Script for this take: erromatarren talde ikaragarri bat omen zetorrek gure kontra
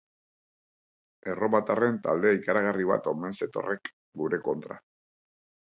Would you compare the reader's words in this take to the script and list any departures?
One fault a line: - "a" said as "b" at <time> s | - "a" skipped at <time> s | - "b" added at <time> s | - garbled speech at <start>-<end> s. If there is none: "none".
none